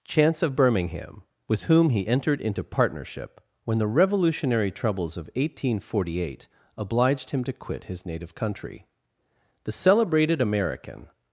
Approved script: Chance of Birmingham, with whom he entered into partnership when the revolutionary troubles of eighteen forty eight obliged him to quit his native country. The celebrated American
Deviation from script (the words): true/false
false